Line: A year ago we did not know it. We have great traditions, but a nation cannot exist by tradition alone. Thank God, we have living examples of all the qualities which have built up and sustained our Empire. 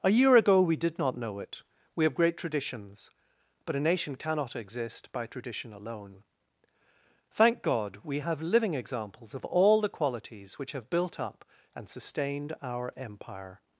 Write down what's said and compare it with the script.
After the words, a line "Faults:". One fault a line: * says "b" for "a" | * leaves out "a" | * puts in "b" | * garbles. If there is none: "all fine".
A year ago we did not know it. We have great traditions, but a nation cannot exist by tradition alone. Thank God, we have living examples of all the qualities which have built up and sustained our Empire.
Faults:
all fine